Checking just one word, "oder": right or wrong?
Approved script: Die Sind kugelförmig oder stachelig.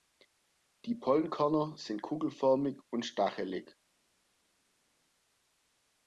wrong